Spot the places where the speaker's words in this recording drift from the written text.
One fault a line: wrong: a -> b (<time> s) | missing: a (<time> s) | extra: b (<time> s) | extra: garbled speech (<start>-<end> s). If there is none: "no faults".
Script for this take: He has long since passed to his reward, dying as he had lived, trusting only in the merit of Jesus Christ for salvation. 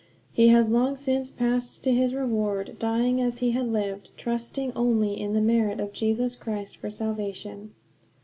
no faults